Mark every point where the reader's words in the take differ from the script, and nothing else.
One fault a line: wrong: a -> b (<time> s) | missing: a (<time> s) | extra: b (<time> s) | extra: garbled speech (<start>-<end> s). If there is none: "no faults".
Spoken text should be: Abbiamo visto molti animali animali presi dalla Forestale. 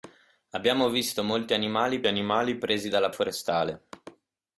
no faults